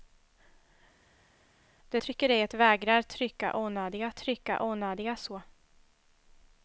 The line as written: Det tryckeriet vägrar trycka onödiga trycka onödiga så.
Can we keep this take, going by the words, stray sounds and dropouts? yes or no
yes